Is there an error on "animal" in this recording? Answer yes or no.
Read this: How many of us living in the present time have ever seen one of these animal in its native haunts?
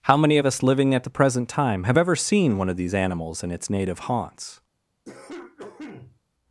yes